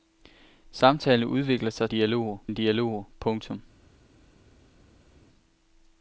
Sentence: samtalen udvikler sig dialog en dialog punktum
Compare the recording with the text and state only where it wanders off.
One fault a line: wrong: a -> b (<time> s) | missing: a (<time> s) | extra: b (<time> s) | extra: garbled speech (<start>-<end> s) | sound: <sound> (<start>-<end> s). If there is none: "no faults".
no faults